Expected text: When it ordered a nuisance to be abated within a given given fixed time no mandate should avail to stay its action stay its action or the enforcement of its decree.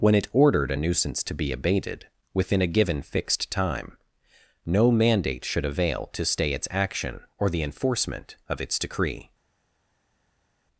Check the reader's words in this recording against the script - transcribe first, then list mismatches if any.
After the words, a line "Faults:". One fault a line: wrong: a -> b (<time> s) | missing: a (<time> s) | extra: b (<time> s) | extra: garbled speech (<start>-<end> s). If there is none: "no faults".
When it ordered a nuisance to be abated within a given fixed time no mandate should avail to stay its action or the enforcement of its decree.
Faults:
missing: given (3.0 s)
missing: stay its action (7.2 s)